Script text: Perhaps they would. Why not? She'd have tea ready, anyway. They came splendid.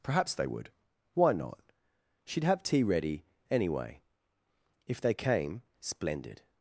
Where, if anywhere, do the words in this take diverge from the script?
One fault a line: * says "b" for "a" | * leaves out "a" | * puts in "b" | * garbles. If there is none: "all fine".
* puts in "If"